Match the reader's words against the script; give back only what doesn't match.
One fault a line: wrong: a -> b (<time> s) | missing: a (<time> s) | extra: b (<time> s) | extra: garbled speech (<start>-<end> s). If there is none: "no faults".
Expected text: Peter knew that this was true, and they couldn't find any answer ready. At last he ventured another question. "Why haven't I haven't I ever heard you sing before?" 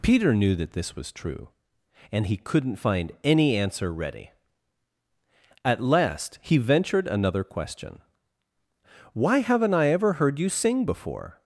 wrong: they -> he (2.3 s)
missing: haven't I (9.9 s)